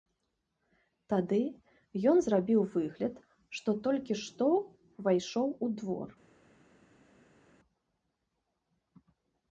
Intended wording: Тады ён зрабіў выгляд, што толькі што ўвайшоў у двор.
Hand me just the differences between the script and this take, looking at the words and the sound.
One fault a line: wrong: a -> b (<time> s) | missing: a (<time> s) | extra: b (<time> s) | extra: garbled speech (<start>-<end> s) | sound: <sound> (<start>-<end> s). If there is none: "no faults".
no faults